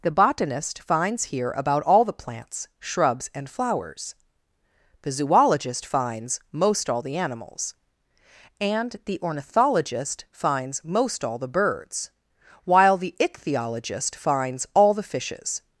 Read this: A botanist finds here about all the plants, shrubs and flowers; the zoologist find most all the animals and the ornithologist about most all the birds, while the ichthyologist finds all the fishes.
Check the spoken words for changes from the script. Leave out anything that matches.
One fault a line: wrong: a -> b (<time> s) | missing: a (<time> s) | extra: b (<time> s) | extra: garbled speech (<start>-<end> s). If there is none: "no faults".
wrong: A -> The (0.0 s)
wrong: find -> finds (5.8 s)
wrong: about -> finds (10.3 s)